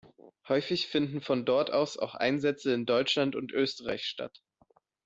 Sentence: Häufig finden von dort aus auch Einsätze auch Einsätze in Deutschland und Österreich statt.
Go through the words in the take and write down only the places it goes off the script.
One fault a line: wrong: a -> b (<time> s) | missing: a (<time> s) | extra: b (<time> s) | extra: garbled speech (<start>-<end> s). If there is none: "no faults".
missing: auch Einsätze (2.7 s)